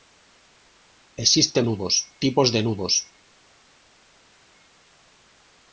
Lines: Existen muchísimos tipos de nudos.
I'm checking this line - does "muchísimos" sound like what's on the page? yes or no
no